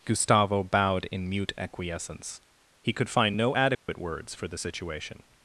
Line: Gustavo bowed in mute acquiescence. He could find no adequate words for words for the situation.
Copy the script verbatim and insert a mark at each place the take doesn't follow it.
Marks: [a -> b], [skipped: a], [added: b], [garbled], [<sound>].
Gustavo bowed in mute acquiescence. He could find no adequate [dropout] words for [skipped: words for] the situation.